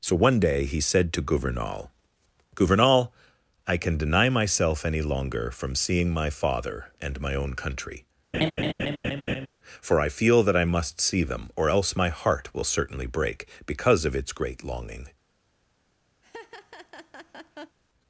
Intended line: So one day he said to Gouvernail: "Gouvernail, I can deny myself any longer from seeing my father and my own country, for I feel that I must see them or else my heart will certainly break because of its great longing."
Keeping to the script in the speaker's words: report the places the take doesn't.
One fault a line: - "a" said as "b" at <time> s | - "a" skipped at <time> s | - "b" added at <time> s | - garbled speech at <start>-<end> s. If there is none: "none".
none